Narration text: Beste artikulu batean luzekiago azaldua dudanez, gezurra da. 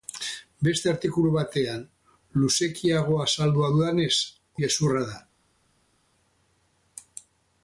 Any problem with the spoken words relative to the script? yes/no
no